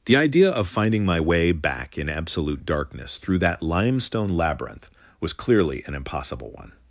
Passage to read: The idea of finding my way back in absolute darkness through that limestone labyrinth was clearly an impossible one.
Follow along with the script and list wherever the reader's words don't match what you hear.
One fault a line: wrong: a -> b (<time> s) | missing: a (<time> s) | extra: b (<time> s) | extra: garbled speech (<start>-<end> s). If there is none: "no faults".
no faults